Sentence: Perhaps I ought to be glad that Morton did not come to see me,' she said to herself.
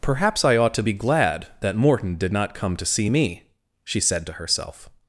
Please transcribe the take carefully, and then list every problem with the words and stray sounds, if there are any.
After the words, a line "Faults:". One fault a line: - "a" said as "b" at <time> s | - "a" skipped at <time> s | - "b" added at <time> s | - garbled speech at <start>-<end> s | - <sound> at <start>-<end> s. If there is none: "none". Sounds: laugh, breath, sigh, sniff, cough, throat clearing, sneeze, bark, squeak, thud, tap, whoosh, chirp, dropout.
Perhaps I ought to be glad that Morton did not come to see me,' she said to herself.
Faults:
none